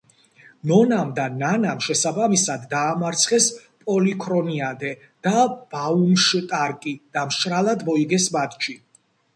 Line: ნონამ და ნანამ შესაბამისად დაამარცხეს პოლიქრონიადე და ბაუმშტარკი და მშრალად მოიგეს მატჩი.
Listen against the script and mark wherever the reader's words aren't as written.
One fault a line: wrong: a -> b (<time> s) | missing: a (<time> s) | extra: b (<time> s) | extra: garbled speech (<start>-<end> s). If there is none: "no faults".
no faults